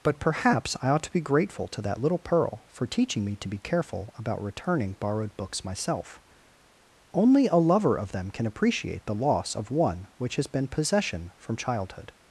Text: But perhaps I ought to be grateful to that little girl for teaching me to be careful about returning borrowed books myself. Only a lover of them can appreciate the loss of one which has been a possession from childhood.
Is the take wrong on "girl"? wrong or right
wrong